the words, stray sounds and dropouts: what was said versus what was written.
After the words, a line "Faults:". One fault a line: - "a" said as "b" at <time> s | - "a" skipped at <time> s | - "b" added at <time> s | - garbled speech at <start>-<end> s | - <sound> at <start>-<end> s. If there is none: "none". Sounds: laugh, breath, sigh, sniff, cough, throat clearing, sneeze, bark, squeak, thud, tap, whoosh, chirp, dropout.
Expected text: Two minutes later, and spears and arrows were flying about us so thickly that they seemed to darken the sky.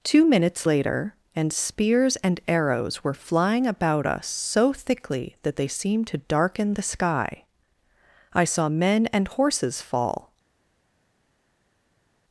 Two minutes later, and spears and arrows were flying about us so thickly that they seemed to darken the sky. I saw men and horses fall
Faults:
- "I saw men and horses fall" added at 8.3 s